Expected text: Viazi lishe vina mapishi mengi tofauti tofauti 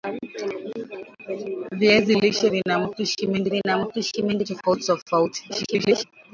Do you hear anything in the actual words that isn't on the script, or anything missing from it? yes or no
yes